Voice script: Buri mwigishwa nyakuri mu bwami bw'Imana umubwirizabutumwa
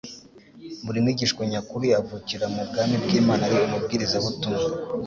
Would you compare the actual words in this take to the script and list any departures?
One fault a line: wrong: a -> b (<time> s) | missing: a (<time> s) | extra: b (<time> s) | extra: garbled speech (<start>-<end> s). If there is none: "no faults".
extra: avukira (2.0 s)
extra: ari (3.5 s)